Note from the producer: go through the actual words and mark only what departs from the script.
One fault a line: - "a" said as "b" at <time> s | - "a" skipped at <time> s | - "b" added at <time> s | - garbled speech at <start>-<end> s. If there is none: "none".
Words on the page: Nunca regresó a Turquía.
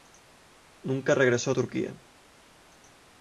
none